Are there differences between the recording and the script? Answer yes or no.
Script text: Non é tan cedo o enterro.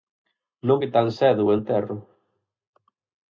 no